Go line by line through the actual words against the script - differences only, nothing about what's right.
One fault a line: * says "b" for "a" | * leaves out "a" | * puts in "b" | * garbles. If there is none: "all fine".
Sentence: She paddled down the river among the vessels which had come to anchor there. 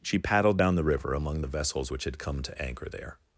all fine